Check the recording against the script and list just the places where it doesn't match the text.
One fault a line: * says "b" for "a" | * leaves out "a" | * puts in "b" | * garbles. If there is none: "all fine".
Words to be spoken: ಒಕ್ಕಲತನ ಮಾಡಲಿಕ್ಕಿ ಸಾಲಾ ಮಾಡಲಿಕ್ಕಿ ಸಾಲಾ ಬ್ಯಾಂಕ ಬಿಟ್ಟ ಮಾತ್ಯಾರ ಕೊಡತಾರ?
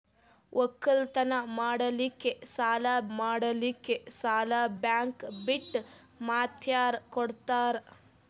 all fine